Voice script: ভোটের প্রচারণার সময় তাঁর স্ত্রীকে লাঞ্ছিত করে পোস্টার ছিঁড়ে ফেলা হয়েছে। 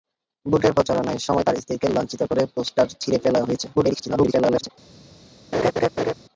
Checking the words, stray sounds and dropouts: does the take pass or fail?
fail